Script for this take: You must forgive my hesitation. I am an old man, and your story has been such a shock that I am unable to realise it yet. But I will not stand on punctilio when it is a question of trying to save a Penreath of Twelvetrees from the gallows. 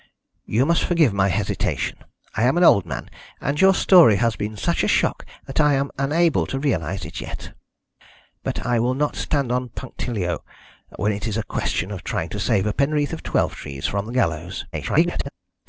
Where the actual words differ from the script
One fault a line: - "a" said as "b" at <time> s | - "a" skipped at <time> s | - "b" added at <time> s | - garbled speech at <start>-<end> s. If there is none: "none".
- garbled speech at 14.7-15.3 s